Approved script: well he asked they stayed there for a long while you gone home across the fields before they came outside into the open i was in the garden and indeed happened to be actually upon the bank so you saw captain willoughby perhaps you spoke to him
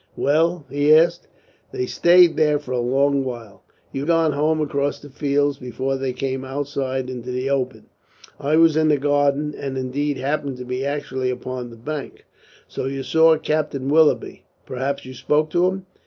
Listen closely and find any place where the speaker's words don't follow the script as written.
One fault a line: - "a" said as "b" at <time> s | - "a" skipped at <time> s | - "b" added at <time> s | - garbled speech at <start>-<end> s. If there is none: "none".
none